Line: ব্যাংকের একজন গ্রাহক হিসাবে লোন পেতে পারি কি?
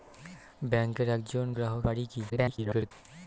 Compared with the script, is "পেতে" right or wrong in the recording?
wrong